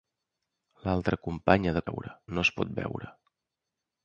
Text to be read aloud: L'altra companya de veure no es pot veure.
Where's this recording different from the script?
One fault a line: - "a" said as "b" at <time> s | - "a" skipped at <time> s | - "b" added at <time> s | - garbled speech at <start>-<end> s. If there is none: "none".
none